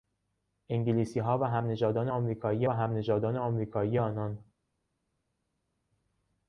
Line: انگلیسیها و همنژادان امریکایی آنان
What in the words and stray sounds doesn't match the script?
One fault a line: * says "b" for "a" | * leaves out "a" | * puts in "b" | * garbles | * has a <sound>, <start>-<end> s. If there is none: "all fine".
* puts in "همنژادان امریکایی"